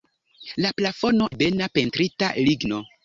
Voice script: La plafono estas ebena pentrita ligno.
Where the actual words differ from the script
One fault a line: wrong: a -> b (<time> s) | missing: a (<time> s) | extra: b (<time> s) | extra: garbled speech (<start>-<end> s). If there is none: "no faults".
missing: estas (1.3 s)